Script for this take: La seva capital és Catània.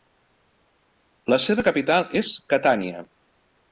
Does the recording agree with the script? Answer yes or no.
yes